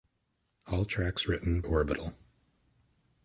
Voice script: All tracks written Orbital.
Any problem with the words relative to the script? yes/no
no